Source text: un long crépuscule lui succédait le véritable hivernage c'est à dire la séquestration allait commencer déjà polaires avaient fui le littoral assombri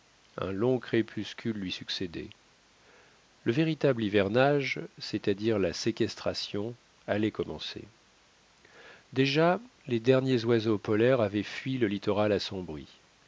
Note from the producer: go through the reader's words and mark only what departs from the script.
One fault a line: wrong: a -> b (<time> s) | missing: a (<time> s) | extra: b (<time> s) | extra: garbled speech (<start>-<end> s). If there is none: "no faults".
extra: les derniers oiseaux (9.9 s)